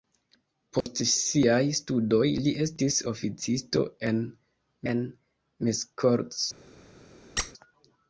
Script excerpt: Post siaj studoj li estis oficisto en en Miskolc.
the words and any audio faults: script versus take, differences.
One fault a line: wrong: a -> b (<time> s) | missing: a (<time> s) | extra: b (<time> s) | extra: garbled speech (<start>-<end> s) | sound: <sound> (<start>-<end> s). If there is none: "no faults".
sound: dropout (0.8-0.9 s)
sound: squeak (7.4-7.5 s)